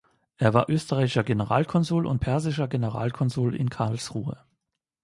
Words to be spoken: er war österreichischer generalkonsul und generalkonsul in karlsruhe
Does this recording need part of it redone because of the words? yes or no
yes